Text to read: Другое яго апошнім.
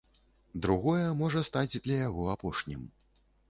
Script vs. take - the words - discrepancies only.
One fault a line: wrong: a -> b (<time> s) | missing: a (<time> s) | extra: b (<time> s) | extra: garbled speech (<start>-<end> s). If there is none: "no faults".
extra: можа стаць для (1.2 s)